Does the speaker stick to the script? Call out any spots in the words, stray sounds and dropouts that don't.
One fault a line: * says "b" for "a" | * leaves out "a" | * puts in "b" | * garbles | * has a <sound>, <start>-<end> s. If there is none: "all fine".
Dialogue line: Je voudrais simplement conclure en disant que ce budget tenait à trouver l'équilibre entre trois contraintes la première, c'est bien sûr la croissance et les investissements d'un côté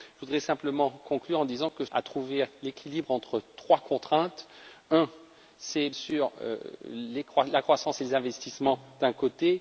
* leaves out "ce budget tenait"
* leaves out "bien"